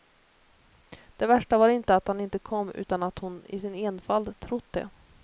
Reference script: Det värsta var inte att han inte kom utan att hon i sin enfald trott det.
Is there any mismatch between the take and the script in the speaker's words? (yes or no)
no